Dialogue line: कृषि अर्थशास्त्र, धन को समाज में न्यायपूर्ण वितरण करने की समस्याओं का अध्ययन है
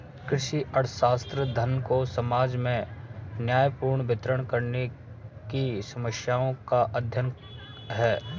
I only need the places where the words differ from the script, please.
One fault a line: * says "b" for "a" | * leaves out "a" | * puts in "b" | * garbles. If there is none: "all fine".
all fine